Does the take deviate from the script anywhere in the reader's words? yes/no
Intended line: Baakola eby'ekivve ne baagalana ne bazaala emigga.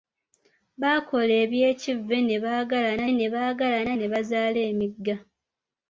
yes